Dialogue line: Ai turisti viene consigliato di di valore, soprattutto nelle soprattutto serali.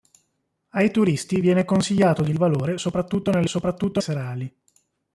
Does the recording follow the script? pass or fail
pass